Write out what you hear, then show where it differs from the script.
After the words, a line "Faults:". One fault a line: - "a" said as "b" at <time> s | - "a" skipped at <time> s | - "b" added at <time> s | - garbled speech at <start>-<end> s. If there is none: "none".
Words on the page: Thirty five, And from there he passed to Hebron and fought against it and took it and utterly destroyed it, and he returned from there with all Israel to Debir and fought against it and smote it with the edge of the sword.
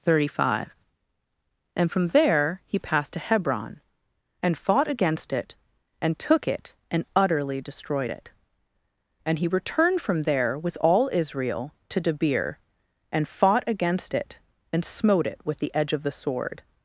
Thirty five, And from there he passed to Hebron and fought against it and took it and utterly destroyed it, and he returned from there with all Israel to Debir and fought against it and smote it with the edge of the sword.
Faults:
none